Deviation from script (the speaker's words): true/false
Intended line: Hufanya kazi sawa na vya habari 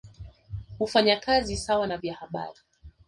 false